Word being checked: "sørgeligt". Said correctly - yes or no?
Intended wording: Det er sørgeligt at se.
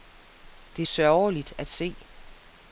yes